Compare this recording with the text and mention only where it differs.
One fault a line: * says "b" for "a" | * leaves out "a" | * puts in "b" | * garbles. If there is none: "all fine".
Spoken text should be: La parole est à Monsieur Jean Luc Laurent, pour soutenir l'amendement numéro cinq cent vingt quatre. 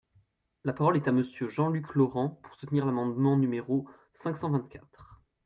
all fine